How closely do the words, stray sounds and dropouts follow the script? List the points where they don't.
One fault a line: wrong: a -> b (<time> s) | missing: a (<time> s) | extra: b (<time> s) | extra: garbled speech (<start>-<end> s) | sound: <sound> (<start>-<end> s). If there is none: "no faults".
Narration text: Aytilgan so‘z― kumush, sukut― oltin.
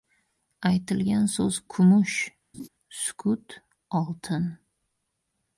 sound: laugh (2.5-2.7 s)